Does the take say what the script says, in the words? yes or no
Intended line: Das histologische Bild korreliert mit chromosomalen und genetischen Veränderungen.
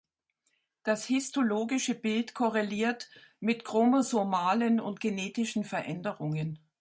yes